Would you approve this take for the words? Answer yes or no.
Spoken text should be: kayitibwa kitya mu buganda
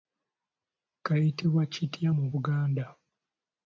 yes